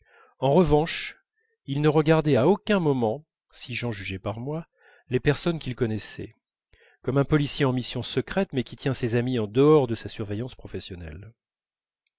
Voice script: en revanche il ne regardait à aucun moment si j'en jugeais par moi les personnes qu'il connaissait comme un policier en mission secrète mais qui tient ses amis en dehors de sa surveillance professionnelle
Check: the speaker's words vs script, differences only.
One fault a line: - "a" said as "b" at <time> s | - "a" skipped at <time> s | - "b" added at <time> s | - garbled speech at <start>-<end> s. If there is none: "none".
none